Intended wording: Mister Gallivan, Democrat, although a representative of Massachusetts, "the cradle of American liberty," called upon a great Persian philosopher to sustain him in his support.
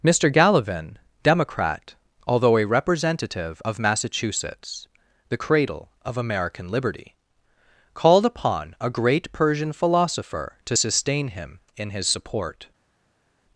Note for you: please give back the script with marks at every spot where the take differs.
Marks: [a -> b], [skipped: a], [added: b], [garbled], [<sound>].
Mister Gallivan, Democrat, although a representative of Massachusetts, "the cradle of American liberty," called upon a great Persian philosopher to sustain him in his support.